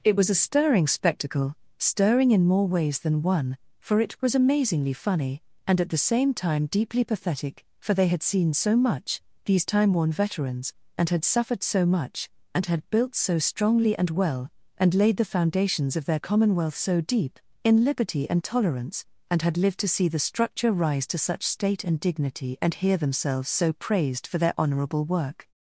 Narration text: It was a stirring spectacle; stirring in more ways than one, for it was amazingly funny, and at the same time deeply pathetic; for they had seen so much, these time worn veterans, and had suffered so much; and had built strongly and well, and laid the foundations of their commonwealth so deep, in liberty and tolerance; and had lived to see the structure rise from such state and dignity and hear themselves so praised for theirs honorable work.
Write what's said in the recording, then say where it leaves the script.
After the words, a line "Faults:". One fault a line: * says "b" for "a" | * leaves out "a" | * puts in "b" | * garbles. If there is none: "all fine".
It was a stirring spectacle; stirring in more ways than one, for it was amazingly funny, and at the same time deeply pathetic; for they had seen so much, these time worn veterans, and had suffered so much; and had built so strongly and well, and laid the foundations of their commonwealth so deep, in liberty and tolerance; and had lived to see the structure rise to such state and dignity and hear themselves so praised for their honorable work.
Faults:
* puts in "so"
* says "to" for "from"
* says "their" for "theirs"